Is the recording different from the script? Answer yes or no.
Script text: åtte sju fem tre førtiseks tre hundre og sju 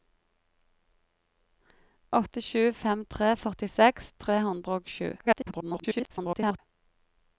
yes